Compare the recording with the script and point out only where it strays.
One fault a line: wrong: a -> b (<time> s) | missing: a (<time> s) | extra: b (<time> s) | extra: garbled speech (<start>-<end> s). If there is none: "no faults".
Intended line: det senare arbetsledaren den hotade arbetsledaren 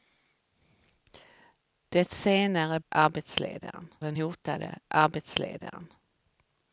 no faults